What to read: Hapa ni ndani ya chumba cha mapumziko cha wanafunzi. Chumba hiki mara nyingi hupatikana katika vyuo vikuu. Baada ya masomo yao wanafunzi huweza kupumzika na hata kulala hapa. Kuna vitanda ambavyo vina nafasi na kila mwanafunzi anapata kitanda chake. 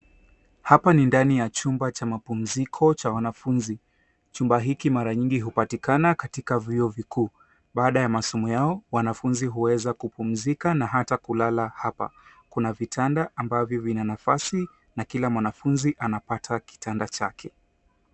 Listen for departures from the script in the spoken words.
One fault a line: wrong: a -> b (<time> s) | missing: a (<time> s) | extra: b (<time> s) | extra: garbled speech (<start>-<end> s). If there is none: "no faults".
no faults